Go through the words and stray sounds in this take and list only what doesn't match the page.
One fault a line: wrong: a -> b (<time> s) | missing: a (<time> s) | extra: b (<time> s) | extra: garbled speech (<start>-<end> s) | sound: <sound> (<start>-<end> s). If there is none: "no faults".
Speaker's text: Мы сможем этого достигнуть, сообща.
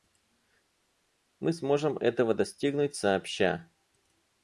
no faults